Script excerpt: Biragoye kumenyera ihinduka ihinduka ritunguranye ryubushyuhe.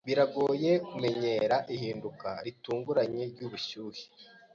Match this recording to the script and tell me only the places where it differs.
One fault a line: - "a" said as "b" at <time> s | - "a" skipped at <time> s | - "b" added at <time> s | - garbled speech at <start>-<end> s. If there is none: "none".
- "ihinduka" skipped at 2.3 s